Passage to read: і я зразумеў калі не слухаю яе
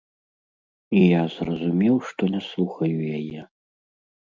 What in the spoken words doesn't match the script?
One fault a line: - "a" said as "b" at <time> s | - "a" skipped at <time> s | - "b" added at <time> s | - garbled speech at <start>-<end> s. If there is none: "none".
- "калі" said as "што" at 2.1 s